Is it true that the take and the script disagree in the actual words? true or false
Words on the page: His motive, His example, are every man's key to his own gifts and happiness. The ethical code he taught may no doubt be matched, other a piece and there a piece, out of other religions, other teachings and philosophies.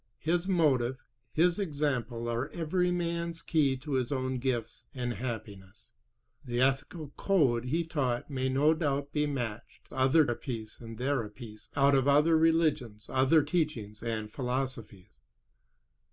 false